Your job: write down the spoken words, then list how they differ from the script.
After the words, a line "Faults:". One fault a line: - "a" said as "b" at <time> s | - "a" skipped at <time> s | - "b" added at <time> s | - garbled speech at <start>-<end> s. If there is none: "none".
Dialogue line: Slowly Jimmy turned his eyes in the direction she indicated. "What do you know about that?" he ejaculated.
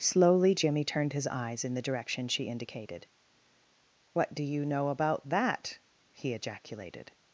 Slowly Jimmy turned his eyes in the direction she indicated. "What do you know about that?" he ejaculated.
Faults:
none